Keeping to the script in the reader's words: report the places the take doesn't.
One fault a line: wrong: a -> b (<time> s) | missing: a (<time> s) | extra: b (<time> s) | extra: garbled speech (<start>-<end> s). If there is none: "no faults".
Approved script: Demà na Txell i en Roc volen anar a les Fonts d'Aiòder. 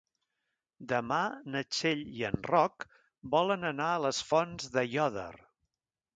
no faults